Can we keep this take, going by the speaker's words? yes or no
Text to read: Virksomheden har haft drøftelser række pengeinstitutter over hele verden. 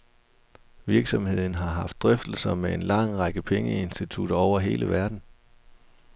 no